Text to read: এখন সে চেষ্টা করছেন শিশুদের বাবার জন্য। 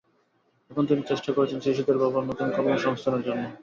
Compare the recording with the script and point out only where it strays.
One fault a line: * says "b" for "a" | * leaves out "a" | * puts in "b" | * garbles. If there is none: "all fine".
* says "তিনি" for "সে"
* puts in "নতুন কর্মসংস্থানের"